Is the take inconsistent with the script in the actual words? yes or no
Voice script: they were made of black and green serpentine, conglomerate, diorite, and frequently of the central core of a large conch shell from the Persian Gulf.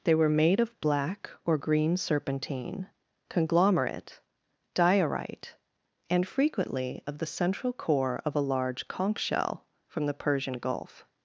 yes